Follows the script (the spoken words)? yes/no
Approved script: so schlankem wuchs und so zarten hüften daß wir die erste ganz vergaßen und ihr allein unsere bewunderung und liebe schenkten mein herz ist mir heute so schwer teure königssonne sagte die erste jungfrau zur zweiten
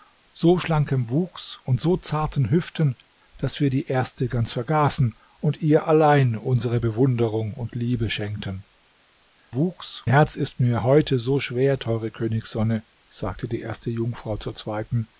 no